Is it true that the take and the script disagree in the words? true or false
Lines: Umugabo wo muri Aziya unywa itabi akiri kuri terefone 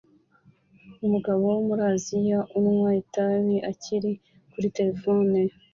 false